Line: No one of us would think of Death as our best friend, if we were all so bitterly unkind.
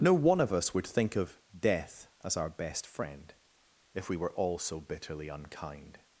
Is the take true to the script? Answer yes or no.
yes